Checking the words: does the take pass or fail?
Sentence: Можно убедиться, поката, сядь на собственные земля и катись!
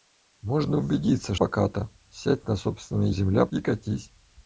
pass